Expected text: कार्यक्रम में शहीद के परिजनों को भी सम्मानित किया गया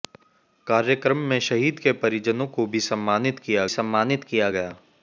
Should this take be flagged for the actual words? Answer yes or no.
yes